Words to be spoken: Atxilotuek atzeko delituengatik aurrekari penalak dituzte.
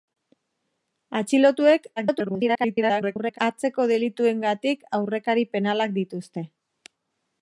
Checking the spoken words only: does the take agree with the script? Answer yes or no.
no